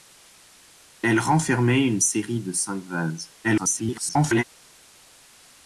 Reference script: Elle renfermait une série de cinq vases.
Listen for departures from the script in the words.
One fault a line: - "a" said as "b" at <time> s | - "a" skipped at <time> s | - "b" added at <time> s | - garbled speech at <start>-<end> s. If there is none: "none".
- garbled speech at 3.4-4.4 s